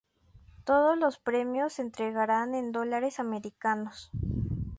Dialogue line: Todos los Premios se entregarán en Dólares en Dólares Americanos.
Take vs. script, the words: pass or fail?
fail